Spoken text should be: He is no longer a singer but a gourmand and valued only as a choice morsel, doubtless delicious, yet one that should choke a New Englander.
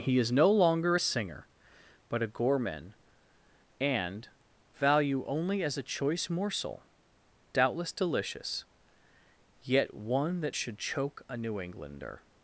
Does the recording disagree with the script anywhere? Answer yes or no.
yes